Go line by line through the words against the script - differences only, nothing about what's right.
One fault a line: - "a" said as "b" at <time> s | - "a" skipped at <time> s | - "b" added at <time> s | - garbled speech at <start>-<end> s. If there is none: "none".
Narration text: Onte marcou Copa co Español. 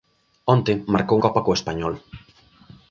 none